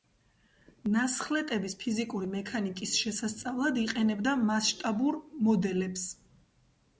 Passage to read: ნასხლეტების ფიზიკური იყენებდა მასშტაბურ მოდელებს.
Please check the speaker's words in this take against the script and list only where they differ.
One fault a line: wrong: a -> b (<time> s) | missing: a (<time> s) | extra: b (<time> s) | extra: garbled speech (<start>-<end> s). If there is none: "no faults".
extra: მექანიკის შესასწავლად (2.4 s)